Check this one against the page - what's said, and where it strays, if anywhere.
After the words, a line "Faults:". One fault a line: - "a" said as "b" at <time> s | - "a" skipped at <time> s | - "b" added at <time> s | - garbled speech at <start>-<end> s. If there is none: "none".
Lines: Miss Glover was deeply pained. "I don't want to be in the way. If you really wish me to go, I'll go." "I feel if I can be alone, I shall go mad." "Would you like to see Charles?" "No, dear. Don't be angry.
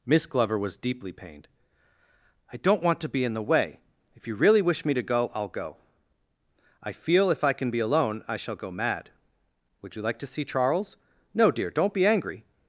Miss Glover was deeply pained. "I don't want to be in the way. If you really wish me to go, I'll go." "I feel if I can be alone, I shall go mad." "Would you like to see Charles?" "No, dear. Don't be angry.
Faults:
none